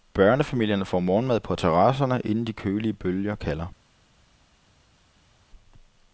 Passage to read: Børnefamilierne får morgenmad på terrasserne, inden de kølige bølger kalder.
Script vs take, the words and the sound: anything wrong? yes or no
no